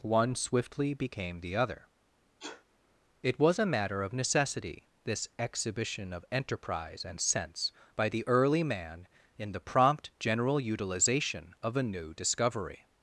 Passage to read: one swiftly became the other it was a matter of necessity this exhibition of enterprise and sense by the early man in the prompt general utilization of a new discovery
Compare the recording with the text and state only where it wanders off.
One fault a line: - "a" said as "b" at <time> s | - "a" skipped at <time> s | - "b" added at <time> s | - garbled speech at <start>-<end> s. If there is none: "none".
none